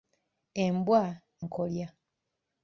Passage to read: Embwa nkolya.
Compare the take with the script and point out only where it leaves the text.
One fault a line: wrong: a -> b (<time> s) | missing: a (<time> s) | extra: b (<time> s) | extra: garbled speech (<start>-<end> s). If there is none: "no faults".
no faults